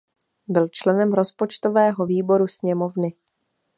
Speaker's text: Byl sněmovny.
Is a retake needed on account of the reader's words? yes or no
yes